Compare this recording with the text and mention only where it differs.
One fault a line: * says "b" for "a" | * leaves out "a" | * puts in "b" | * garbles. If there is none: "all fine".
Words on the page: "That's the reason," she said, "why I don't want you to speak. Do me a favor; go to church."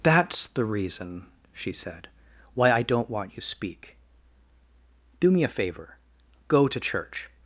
* leaves out "to"